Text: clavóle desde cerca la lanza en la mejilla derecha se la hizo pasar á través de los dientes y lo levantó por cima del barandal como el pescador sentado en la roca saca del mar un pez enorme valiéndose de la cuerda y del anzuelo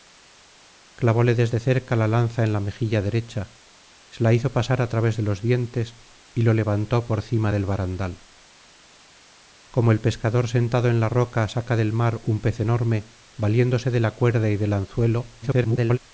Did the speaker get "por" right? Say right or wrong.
right